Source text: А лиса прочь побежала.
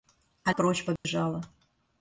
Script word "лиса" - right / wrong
wrong